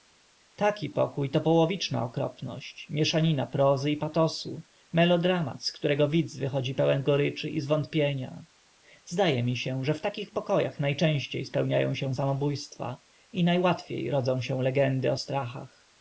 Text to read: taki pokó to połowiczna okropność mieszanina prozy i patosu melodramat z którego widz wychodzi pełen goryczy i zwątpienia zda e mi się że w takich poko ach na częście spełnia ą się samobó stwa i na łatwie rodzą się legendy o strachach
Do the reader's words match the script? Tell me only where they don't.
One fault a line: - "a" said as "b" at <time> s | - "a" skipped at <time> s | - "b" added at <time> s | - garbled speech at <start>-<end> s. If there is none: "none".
none